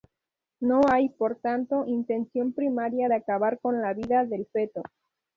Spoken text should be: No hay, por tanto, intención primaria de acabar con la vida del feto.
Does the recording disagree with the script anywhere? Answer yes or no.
no